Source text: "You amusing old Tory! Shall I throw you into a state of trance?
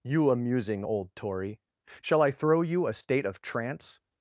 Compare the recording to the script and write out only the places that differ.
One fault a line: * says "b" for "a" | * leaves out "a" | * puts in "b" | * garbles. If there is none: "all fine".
* leaves out "into"